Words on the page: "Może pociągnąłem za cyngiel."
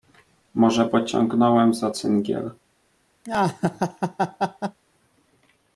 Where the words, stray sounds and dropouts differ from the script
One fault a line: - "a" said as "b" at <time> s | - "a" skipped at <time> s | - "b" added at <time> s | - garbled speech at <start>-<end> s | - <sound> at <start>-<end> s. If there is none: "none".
- laugh at 3.2-4.8 s